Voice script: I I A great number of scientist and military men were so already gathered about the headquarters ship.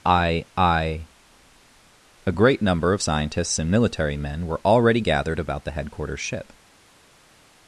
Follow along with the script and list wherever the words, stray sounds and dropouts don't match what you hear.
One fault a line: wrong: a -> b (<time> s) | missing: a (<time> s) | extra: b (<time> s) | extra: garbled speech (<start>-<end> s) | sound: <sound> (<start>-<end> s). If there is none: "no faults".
wrong: scientist -> scientists (3.0 s)
missing: so (4.6 s)